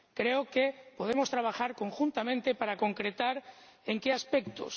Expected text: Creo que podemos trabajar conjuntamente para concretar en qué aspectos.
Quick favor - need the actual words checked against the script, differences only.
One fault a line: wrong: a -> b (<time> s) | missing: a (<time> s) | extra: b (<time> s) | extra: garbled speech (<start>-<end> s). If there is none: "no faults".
no faults